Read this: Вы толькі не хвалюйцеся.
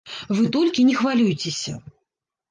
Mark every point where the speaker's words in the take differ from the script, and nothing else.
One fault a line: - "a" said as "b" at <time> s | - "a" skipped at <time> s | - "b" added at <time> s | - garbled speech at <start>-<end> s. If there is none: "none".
none